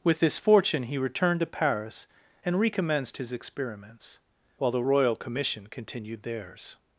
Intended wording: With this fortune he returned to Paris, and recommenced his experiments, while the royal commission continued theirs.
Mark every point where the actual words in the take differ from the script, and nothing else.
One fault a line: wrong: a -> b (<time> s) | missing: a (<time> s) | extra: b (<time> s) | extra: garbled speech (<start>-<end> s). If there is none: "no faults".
no faults